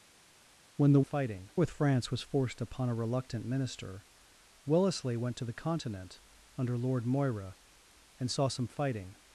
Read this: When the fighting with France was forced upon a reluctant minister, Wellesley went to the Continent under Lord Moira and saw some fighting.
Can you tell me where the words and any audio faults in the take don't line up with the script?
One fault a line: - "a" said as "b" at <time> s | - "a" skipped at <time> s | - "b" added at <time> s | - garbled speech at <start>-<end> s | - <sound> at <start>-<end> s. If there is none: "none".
none